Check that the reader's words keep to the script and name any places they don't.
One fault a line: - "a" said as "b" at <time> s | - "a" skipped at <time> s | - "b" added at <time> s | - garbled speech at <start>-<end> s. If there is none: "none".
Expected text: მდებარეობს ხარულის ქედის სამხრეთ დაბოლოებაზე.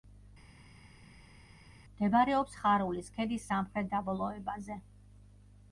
none